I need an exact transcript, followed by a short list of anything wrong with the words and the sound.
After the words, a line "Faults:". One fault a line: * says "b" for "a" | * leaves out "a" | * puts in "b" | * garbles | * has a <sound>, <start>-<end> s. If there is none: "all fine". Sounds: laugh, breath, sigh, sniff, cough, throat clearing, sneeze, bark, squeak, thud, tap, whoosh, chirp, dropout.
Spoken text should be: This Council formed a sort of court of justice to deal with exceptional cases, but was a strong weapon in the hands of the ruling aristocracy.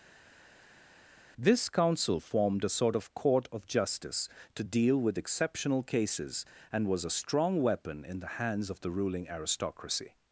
This Council formed a sort of court of justice to deal with exceptional cases, and was a strong weapon in the hands of the ruling aristocracy.
Faults:
* says "and" for "but"